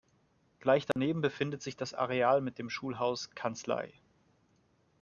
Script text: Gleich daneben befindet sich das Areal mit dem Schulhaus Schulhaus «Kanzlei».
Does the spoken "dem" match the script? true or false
true